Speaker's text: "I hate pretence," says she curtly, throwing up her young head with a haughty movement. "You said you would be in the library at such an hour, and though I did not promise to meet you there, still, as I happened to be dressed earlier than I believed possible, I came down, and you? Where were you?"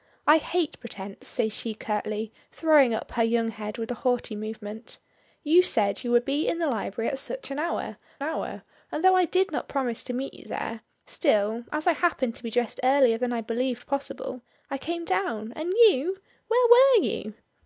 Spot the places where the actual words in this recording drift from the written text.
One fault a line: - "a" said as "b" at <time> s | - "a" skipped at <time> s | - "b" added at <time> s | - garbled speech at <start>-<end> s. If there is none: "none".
- "hour" added at 8.2 s